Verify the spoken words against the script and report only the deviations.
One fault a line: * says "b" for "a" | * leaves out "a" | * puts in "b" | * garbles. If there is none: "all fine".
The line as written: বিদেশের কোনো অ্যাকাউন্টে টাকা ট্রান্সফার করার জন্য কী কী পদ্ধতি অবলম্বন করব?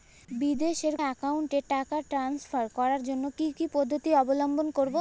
* leaves out "কোনো"